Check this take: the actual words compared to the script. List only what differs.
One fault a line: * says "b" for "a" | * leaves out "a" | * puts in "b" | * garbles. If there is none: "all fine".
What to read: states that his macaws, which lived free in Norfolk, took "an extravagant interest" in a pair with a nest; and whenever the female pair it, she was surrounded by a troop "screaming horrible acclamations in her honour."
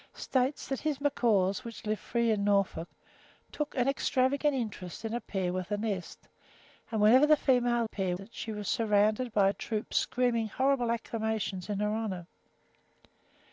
all fine